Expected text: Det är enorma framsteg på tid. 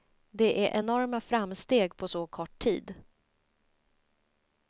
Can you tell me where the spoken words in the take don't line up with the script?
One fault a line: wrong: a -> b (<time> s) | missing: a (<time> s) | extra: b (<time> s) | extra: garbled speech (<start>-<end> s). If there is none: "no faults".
extra: så kort (2.1 s)